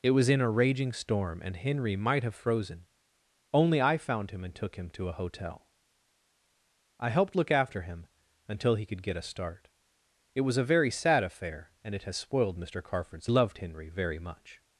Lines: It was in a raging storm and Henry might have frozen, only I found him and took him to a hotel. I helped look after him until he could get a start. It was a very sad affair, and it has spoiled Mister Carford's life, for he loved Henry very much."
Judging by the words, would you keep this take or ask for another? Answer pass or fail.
fail